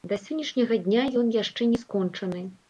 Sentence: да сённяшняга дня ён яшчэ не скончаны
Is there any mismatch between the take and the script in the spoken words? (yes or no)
no